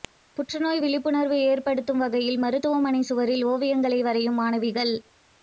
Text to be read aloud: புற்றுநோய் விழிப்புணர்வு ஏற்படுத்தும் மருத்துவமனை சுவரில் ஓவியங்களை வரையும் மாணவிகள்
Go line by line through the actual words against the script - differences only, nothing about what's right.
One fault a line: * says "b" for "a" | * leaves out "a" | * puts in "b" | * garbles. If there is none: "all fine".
* puts in "வகையில்"